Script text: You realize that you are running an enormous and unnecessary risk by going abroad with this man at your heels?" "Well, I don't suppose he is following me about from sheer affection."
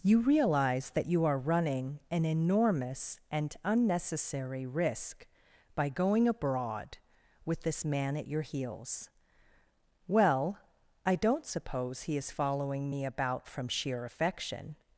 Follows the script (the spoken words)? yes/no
yes